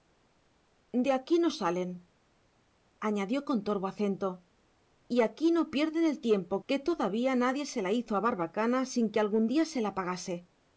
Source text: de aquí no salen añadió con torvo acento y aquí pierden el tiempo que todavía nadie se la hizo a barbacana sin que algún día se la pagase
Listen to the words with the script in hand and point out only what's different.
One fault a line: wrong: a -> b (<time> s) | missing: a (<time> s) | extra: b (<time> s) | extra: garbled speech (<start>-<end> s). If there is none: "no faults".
extra: no (5.5 s)